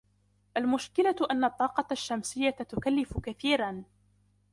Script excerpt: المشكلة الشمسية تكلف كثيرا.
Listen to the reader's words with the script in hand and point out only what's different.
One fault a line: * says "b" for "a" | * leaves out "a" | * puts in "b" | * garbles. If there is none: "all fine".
* puts in "أن الطاقة"